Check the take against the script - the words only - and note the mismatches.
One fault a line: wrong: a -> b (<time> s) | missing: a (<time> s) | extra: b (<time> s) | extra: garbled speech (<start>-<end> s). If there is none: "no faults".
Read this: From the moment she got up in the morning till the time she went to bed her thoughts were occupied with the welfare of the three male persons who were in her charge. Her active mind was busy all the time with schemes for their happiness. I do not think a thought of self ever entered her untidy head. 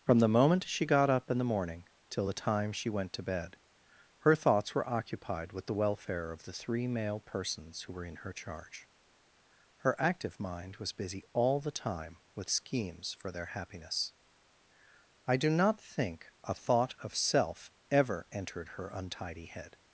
no faults